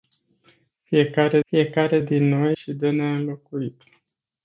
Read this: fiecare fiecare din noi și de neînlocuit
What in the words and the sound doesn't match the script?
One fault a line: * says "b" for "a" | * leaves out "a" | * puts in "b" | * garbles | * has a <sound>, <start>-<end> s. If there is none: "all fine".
all fine